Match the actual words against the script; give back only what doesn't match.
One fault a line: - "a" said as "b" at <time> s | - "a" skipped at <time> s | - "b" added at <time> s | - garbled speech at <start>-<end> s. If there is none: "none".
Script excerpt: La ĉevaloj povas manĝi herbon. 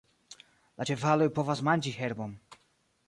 none